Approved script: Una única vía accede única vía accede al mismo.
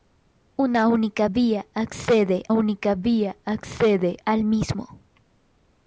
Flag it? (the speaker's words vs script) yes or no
no